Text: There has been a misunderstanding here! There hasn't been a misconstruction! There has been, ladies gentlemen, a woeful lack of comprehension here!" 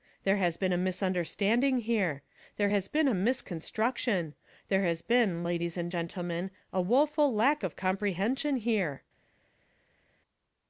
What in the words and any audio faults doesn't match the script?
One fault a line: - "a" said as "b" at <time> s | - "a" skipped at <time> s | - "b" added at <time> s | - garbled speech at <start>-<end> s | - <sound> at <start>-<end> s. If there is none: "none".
- "hasn't" said as "has" at 2.7 s
- "and" added at 5.8 s